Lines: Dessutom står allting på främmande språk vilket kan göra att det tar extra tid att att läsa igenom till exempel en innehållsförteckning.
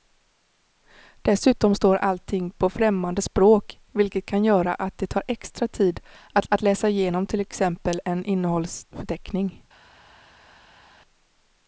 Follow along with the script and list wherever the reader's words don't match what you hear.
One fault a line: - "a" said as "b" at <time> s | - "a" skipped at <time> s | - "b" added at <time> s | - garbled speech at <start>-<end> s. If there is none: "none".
none